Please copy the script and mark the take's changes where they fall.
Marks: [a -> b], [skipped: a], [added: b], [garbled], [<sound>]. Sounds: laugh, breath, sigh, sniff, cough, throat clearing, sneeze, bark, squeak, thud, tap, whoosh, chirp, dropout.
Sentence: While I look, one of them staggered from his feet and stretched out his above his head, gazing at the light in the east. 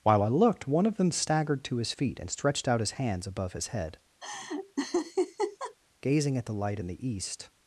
While I [look, -> looked] one of them staggered [from -> to] his feet and stretched out his [added: hands] above his head, [laugh] gazing at the light in the east.